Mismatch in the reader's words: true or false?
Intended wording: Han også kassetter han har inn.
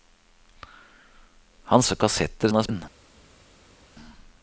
false